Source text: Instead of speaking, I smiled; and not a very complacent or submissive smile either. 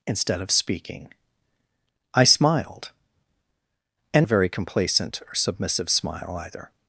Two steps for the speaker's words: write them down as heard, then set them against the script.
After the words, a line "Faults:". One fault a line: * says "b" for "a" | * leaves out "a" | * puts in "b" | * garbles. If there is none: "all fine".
Instead of speaking, I smiled; and a very complacent or submissive smile either.
Faults:
* leaves out "not"